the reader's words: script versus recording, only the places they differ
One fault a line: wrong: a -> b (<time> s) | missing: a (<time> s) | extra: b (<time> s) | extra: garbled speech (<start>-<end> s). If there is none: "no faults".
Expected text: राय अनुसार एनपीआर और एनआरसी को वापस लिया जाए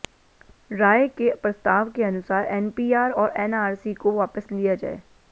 extra: के प्रस्ताव के (1.1 s)